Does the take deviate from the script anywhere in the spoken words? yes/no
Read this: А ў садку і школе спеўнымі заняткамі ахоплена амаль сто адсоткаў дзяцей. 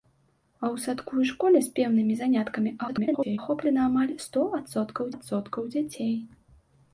yes